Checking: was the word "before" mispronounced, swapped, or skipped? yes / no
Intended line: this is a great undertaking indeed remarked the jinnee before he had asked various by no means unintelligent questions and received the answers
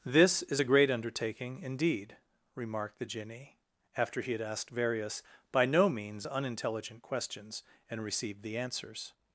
yes